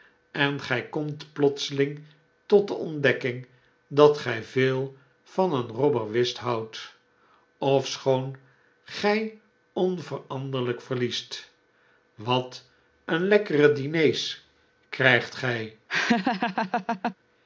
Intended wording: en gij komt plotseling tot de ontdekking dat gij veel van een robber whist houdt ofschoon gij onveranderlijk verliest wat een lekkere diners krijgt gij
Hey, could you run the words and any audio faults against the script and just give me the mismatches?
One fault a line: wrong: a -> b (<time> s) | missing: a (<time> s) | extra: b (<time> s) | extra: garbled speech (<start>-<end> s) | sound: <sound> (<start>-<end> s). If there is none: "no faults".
sound: laugh (15.9-17.1 s)